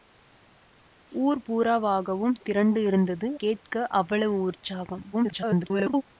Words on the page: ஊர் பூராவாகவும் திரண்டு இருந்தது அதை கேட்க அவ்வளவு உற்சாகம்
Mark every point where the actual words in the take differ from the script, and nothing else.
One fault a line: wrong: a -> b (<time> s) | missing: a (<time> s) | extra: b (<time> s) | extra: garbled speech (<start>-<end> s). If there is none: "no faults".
missing: அதை (3.3 s)
extra: garbled speech (5.1-6.0 s)